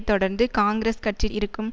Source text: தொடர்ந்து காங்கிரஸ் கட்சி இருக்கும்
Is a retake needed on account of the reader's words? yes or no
no